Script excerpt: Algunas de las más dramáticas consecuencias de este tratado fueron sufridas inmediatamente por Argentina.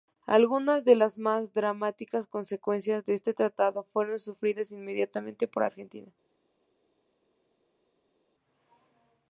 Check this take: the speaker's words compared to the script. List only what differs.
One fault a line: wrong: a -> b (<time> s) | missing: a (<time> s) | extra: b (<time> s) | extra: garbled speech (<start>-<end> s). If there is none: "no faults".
no faults